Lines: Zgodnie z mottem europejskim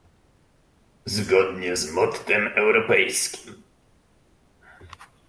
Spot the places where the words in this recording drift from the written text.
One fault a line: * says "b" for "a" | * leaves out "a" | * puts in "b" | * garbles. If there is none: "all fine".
all fine